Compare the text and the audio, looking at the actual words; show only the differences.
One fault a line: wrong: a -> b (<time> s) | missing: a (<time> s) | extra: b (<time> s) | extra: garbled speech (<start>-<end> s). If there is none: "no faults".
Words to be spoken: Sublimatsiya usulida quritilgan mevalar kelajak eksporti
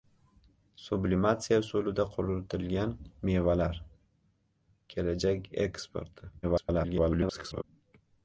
extra: garbled speech (6.4-7.6 s)